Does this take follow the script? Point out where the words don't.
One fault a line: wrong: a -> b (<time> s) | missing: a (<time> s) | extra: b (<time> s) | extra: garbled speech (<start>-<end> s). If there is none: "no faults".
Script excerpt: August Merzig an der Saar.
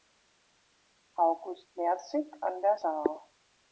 no faults